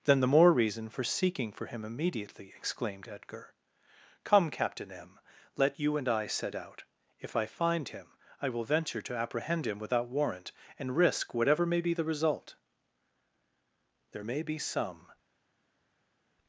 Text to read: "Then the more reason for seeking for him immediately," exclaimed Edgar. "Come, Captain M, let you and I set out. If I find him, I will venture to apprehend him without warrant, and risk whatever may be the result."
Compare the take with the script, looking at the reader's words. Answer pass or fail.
fail